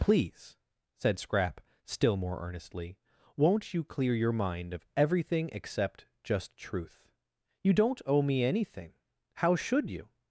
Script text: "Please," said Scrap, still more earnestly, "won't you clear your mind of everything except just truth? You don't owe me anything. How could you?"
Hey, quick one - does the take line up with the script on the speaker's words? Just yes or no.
no